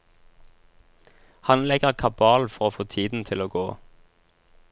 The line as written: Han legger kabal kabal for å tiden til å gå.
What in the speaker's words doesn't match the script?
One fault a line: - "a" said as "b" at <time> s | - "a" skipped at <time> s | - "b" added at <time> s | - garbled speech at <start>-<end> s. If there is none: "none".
- "kabal" skipped at 2.5 s
- "få" added at 2.7 s